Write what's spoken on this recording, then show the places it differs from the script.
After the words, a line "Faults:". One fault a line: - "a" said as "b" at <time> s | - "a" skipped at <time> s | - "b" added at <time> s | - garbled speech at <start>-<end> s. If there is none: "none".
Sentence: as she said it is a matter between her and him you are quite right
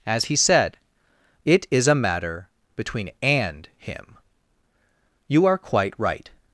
as he said it is a matter between and him you are quite right
Faults:
- "she" said as "he" at 0.2 s
- "her" skipped at 3.1 s